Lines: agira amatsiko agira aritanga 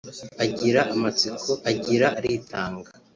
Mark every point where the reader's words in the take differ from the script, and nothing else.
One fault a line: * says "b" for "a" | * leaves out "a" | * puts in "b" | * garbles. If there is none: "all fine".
all fine